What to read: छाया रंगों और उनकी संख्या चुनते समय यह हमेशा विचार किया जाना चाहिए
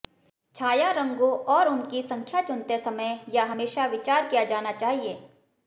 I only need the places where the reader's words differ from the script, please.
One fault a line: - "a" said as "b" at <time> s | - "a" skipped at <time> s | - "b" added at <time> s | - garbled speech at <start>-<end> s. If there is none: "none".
none